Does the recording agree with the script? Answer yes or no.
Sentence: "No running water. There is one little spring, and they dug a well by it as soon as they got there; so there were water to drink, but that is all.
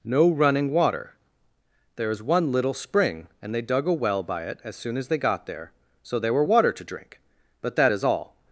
yes